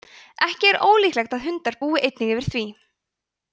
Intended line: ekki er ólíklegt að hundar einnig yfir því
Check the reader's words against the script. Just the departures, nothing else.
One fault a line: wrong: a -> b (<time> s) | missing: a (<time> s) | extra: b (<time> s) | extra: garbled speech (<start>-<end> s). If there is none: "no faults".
extra: búi (1.8 s)